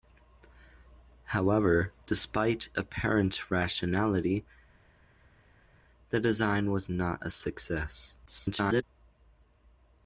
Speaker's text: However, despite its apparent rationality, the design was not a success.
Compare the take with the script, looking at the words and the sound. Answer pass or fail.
fail